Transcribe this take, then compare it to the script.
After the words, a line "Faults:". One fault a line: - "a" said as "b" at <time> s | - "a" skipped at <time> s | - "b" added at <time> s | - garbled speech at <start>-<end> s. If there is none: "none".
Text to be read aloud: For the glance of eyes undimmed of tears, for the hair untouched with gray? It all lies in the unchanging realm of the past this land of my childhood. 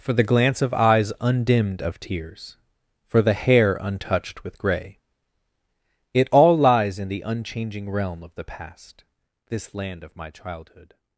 For the glance of eyes undimmed of tears, for the hair untouched with gray? It all lies in the unchanging realm of the past this land of my childhood.
Faults:
none